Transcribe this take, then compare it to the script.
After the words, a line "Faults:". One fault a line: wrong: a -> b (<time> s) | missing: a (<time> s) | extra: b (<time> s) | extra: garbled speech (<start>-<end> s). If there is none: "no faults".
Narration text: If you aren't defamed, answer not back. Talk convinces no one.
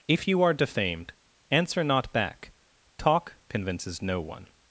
If you are defamed, answer not back. Talk convinces no one.
Faults:
wrong: aren't -> are (0.4 s)